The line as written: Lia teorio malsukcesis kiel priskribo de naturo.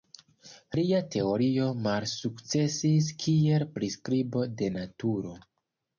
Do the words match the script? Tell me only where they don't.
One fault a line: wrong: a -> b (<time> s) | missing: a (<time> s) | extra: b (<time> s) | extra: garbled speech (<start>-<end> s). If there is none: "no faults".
no faults